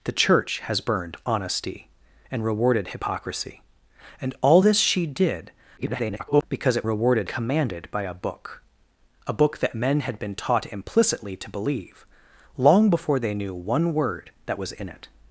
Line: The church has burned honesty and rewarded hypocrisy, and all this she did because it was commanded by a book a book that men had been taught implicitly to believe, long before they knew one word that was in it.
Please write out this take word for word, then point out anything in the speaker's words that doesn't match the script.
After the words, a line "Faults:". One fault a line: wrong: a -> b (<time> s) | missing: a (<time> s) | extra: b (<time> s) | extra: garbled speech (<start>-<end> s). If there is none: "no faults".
The church has burned honesty and rewarded hypocrisy, and all this she did [garbled] because it rewarded commanded by a book a book that men had been taught implicitly to believe, long before they knew one word that was in it.
Faults:
extra: garbled speech (5.8-6.4 s)
wrong: was -> rewarded (6.8 s)